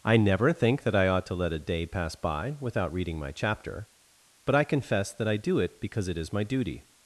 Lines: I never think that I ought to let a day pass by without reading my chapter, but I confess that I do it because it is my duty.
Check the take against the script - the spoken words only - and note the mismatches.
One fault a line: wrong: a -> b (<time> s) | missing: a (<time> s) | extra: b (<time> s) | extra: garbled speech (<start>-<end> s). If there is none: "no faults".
no faults